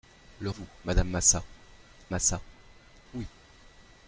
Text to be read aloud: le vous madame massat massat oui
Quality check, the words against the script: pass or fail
pass